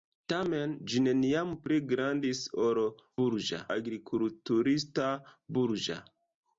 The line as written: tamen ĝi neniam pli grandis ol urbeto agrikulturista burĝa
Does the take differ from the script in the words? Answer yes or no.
yes